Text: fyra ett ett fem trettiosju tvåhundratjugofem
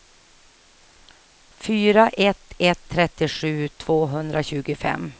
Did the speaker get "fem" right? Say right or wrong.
wrong